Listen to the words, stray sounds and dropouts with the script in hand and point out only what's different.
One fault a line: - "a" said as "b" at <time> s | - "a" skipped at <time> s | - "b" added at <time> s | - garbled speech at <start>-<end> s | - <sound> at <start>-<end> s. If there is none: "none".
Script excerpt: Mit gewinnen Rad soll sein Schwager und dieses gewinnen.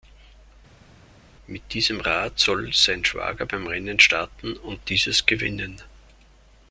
- "gewinnen" said as "diesem" at 1.7 s
- "beim Rennen starten" added at 3.5 s